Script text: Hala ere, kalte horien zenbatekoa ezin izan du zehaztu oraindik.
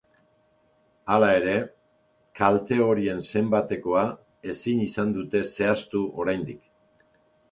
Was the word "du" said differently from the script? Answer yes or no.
yes